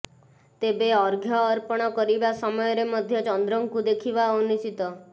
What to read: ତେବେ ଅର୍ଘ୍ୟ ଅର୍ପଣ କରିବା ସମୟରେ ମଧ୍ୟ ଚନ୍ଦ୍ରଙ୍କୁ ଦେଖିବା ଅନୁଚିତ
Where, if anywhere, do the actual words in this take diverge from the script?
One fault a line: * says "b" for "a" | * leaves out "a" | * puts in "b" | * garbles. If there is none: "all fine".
all fine